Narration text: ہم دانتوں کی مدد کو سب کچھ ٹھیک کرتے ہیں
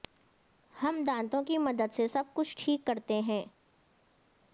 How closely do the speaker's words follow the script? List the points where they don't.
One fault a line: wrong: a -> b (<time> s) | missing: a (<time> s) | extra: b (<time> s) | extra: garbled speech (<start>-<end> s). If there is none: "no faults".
wrong: کو -> سے (1.9 s)